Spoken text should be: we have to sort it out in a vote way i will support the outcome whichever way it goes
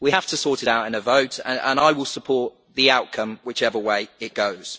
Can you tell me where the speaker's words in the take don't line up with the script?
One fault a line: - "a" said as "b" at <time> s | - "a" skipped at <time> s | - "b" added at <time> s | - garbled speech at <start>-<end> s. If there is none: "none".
- "way" said as "and" at 1.4 s